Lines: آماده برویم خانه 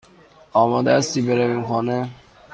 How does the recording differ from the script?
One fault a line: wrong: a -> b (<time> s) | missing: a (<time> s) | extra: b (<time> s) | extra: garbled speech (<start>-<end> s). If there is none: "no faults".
extra: هستی (1.0 s)